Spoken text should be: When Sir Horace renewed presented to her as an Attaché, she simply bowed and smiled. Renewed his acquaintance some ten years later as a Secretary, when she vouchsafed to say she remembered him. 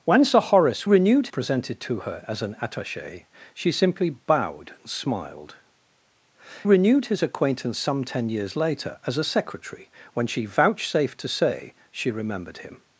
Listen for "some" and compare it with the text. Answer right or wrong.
right